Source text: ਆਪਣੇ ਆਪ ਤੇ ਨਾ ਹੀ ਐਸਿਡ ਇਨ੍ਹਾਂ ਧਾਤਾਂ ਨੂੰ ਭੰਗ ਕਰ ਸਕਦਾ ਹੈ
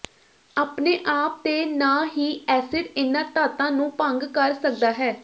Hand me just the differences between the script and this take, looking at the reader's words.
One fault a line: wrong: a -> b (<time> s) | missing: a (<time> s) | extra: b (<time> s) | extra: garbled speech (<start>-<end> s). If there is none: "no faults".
no faults